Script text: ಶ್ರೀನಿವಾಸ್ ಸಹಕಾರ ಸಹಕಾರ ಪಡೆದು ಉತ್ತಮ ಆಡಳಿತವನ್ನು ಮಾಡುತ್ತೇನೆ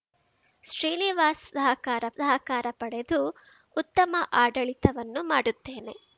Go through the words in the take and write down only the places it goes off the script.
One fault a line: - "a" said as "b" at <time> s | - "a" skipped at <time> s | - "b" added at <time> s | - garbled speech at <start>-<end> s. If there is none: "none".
none